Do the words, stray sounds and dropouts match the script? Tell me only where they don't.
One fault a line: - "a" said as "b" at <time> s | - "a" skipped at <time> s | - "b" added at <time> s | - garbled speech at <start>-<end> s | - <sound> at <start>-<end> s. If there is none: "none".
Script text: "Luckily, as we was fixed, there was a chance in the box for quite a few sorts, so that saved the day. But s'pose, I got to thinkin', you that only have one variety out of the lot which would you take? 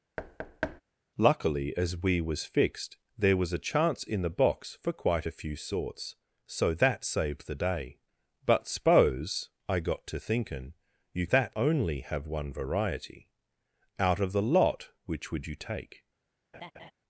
- thud at 0.2-0.8 s
- laugh at 16.5-16.9 s